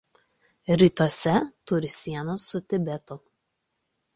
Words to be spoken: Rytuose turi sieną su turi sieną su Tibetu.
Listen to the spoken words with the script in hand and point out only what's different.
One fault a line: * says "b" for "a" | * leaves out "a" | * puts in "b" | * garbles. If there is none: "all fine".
* leaves out "turi sieną su"